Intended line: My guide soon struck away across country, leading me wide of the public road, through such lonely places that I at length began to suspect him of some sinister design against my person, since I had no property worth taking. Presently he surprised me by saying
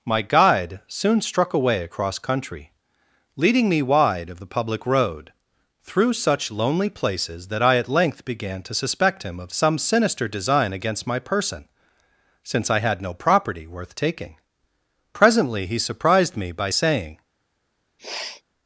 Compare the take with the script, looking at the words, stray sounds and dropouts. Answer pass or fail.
fail